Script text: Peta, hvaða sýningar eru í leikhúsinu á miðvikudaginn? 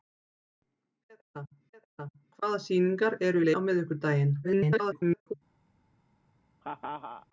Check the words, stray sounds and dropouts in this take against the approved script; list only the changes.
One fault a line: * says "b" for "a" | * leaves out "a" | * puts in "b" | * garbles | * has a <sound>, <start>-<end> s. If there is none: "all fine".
* puts in "peta"
* leaves out "leikhúsinu"
* garbles
* has a laugh, 6.6-7.3 s